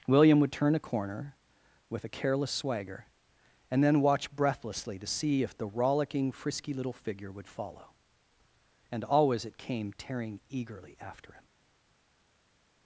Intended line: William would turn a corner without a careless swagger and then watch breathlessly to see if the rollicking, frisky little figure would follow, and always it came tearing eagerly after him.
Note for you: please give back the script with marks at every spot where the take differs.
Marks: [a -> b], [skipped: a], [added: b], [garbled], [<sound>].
William would turn a corner [without -> with] a careless swagger and then watch breathlessly to see if the rollicking, frisky little figure would follow, and always it came tearing eagerly after him.